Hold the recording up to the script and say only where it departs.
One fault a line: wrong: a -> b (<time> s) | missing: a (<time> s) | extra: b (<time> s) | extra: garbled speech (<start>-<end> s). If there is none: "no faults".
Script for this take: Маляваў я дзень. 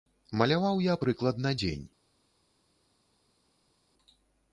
extra: прыкладна (1.0 s)